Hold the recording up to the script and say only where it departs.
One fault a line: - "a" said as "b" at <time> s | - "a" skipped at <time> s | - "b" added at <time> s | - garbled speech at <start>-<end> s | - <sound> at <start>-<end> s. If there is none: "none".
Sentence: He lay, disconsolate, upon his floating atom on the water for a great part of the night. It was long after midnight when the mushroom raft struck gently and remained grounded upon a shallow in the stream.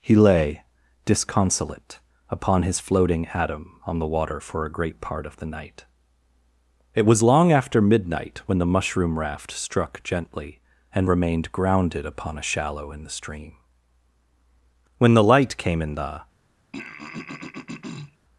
- "When the light came in the" added at 15.0 s
- throat clearing at 16.7-18.2 s